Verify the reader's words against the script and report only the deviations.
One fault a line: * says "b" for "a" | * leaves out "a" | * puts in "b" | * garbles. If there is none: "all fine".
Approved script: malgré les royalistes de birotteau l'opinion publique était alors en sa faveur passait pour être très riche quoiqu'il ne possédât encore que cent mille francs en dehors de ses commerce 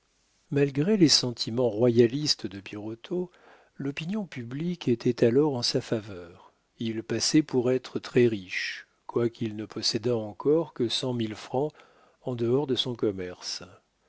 * puts in "sentiments"
* puts in "il"
* says "son" for "ses"